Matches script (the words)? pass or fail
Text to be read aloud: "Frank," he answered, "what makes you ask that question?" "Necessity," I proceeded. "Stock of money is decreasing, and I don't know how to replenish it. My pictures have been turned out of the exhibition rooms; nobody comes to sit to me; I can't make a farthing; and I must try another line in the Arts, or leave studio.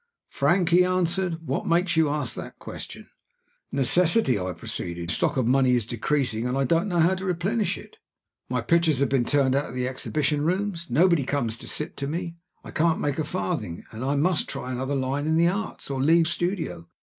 pass